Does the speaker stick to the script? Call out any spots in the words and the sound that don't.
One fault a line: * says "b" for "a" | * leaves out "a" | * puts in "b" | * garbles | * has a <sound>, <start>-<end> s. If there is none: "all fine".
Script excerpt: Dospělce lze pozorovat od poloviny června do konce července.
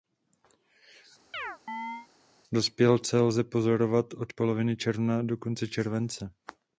* has a chirp, 1.3-2.1 s